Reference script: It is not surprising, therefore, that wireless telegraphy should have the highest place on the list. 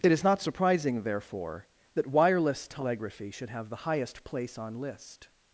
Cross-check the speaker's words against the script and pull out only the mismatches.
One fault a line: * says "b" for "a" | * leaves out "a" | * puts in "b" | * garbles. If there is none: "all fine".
* leaves out "the"